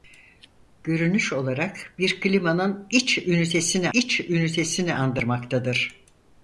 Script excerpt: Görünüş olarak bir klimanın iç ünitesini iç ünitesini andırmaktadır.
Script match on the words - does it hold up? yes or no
yes